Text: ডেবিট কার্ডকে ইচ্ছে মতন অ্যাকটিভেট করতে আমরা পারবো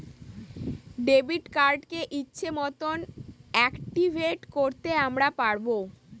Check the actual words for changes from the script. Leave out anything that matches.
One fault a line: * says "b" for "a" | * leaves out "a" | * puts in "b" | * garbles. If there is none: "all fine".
all fine